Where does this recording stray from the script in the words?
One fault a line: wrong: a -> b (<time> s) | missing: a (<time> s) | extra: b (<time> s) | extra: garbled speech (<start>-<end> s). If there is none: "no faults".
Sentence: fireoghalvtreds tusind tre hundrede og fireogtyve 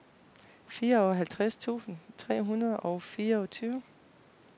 no faults